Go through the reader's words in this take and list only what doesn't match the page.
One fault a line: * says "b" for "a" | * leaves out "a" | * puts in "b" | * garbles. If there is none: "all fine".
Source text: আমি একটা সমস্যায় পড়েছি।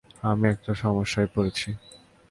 all fine